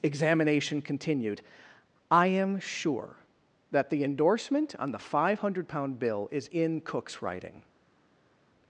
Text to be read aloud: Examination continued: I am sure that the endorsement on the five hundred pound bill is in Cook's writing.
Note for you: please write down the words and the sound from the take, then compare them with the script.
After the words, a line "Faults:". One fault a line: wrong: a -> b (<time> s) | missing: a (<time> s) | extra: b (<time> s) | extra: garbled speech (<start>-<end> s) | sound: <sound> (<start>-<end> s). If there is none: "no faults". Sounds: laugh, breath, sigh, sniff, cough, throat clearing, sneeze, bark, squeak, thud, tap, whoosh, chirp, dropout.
Examination continued: I am sure that the endorsement on the five hundred pound bill is in Cook's writing.
Faults:
no faults